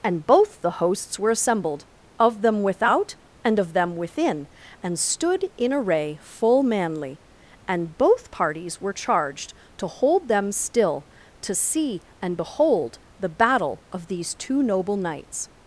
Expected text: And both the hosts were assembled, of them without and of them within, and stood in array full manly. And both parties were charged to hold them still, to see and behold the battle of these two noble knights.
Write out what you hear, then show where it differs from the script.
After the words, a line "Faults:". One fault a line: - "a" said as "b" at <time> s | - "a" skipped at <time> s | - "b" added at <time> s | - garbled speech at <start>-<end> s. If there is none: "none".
And both the hosts were assembled, of them without and of them within, and stood in array full manly. And both parties were charged to hold them still, to see and behold the battle of these two noble knights.
Faults:
none